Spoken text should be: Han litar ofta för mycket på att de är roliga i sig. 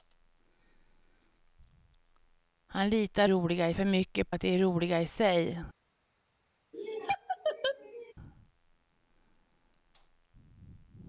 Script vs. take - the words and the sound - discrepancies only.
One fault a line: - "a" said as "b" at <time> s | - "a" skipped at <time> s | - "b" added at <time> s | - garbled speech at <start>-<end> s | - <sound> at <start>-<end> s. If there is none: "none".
- "ofta" said as "roliga" at 3.3 s
- "på" skipped at 4.3 s
- laugh at 6.7-8.1 s